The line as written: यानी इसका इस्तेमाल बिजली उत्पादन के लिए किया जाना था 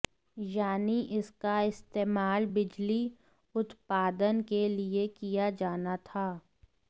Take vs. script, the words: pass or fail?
pass